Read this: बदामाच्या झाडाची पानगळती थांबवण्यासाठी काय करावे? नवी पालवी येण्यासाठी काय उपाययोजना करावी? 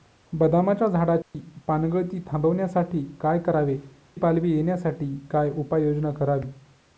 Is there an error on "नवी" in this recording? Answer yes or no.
yes